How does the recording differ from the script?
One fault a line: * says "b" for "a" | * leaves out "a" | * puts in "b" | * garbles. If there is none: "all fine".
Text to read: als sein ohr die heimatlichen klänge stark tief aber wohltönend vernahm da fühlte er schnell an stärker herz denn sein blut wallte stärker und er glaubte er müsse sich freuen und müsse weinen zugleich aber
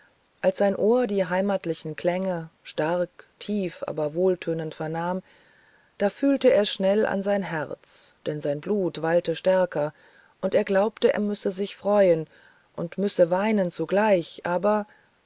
* says "sein" for "stärker"